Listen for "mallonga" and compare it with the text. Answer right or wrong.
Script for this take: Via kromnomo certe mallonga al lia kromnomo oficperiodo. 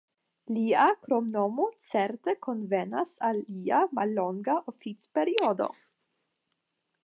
wrong